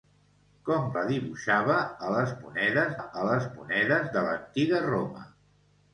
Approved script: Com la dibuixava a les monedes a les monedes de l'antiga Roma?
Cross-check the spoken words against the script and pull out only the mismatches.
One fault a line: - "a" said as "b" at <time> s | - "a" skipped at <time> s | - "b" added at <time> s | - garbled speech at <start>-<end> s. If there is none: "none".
none